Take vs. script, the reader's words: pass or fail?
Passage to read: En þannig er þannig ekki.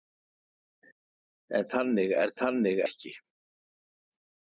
pass